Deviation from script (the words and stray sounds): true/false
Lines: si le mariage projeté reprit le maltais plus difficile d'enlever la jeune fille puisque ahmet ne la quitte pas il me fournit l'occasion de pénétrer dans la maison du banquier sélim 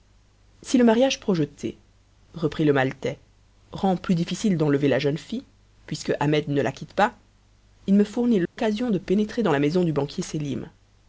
true